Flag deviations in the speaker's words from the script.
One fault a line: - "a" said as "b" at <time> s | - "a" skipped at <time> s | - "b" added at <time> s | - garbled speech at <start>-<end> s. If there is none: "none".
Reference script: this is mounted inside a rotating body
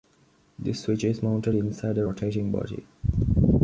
- "switch" added at 0.8 s